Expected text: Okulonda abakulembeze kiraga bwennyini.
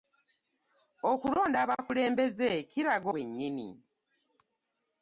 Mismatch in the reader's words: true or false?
false